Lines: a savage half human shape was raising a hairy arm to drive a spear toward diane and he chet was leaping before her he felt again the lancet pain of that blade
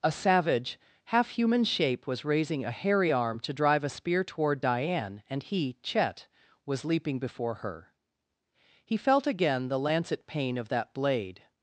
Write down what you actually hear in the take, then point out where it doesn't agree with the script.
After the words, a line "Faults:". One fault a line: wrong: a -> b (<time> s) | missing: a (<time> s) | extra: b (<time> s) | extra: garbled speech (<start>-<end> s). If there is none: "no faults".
a savage half human shape was raising a hairy arm to drive a spear toward diane and he chet was leaping before her he felt again the lancet pain of that blade
Faults:
no faults